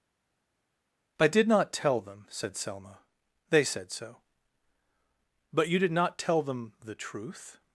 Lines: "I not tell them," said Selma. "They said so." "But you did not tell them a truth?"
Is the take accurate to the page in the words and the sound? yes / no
no